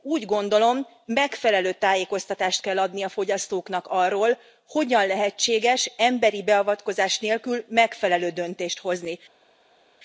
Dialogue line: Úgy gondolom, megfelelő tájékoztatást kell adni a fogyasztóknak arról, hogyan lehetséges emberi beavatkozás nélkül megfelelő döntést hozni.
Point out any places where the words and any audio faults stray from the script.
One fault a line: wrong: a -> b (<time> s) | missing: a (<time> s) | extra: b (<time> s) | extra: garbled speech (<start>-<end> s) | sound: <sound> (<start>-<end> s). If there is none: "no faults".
no faults